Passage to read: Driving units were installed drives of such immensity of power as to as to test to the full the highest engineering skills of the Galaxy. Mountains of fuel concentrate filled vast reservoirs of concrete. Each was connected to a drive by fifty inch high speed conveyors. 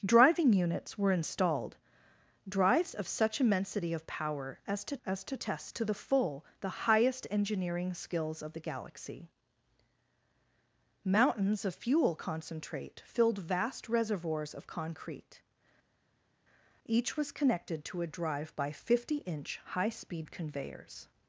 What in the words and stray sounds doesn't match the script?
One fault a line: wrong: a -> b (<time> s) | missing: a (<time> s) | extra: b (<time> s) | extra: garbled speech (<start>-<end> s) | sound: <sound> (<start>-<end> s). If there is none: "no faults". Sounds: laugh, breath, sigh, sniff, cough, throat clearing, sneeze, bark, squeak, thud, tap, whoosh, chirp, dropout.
no faults